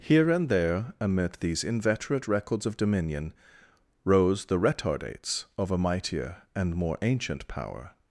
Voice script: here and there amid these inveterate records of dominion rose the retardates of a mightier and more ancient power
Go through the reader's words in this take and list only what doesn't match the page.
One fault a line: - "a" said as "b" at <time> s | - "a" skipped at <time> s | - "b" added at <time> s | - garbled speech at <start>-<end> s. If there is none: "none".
none